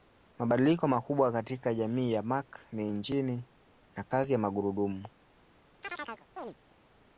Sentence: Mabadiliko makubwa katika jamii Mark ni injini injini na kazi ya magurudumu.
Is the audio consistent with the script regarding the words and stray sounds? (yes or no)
no